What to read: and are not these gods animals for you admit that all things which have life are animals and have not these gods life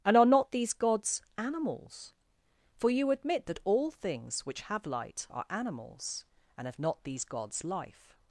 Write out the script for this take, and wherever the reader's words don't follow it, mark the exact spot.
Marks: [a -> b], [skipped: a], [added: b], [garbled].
and are not these gods animals for you admit that all things which have [life -> light] are animals and have not these gods life